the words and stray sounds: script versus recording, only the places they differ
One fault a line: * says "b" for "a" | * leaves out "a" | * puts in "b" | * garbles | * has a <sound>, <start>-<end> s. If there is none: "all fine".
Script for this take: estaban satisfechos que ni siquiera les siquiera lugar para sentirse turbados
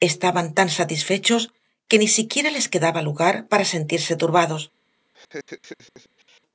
* puts in "tan"
* says "quedaba" for "siquiera"
* has a laugh, 5.1-6.4 s